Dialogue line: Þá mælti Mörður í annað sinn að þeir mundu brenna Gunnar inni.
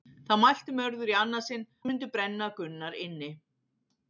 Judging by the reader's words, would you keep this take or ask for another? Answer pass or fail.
fail